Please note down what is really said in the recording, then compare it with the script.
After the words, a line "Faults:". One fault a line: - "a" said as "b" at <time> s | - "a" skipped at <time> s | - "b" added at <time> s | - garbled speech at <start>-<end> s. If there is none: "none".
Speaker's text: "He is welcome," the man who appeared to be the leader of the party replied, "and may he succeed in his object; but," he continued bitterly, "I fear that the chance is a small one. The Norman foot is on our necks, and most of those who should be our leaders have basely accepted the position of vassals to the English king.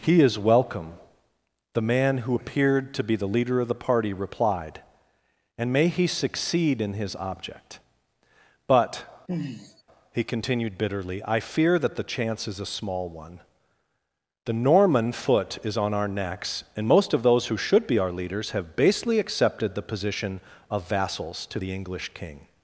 "He is welcome," the man who appeared to be the leader of the party replied, "and may he succeed in his object; but," he continued bitterly, "I fear that the chance is a small one. The Norman foot is on our necks, and most of those who should be our leaders have basely accepted the position of vassals to the English king.
Faults:
none